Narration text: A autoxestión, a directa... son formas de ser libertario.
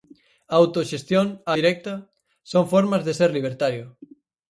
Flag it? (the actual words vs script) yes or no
no